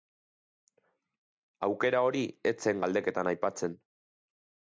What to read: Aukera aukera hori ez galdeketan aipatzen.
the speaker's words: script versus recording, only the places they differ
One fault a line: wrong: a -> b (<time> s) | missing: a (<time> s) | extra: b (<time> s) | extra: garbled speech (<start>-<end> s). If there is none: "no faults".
missing: aukera (2.0 s)
extra: zen (2.7 s)